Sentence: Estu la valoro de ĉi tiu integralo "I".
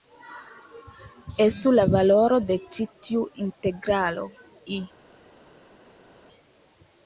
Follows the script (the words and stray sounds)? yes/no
yes